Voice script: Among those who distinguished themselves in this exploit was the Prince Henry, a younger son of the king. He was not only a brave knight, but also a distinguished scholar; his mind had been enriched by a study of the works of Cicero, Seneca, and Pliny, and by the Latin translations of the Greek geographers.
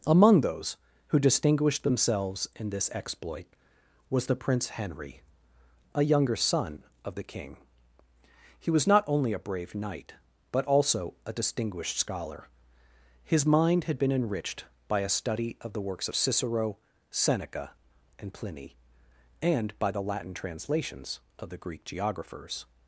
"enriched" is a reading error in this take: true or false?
false